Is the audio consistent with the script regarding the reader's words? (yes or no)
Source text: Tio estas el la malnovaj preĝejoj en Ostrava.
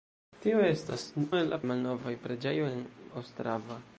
yes